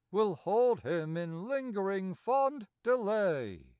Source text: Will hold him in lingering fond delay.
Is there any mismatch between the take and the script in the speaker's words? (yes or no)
no